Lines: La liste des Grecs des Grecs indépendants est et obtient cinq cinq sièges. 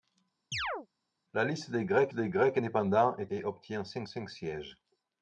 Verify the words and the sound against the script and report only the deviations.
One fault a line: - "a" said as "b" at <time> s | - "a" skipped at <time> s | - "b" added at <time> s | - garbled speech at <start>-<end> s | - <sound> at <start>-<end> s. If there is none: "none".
- chirp at 0.5-0.9 s